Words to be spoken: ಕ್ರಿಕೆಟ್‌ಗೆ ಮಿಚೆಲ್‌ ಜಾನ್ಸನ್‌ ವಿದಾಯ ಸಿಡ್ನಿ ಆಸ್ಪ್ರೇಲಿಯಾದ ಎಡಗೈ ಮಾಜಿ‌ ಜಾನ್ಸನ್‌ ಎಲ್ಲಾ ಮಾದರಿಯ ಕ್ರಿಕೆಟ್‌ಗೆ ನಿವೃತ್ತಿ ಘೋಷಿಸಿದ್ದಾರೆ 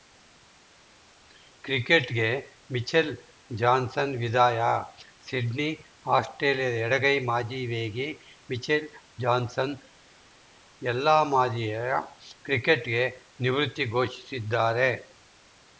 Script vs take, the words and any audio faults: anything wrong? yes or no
yes